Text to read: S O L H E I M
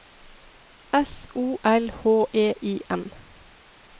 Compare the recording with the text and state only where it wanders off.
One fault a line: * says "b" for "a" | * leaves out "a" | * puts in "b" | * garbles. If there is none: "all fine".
all fine